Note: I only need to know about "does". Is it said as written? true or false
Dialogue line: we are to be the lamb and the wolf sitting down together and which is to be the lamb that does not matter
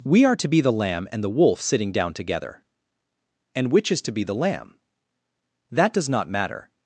true